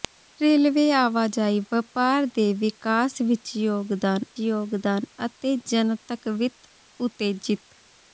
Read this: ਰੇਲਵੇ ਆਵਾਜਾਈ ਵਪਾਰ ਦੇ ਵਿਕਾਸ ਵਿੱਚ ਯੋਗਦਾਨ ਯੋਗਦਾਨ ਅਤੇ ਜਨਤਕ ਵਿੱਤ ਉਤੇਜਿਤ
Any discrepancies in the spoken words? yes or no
no